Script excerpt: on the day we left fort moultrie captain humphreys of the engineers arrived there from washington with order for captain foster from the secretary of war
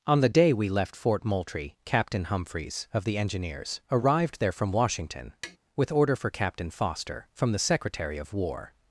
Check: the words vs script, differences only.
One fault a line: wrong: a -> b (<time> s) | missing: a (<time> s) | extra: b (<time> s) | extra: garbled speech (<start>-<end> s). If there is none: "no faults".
no faults